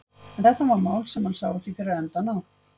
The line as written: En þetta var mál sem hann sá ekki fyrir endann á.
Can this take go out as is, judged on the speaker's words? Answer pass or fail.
pass